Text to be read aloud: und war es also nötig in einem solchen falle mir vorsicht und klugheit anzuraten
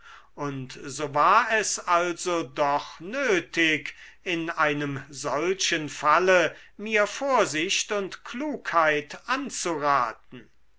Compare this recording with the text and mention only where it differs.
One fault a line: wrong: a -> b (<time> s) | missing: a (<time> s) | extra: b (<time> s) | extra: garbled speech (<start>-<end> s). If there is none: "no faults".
extra: so (0.8 s)
extra: doch (2.4 s)